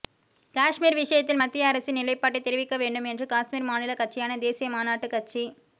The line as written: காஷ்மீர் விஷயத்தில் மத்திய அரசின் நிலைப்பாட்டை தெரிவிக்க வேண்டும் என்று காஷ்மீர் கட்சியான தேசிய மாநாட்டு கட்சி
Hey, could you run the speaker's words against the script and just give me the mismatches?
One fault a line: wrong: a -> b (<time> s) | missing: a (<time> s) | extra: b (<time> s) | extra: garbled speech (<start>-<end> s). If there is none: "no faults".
extra: மாநில (3.7 s)